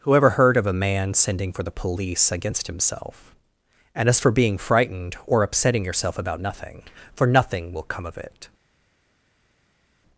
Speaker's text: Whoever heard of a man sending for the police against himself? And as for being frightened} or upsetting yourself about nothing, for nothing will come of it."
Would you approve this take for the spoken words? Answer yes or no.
yes